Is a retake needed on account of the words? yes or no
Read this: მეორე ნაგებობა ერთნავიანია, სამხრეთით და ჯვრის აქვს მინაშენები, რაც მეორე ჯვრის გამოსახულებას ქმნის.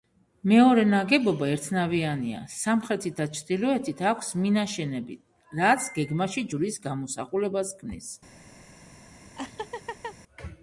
yes